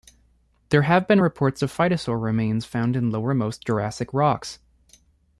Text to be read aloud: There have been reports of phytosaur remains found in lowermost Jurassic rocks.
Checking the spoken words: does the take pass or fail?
pass